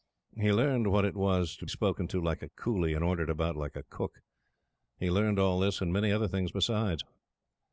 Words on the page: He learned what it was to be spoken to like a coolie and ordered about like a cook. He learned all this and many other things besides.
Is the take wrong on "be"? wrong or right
wrong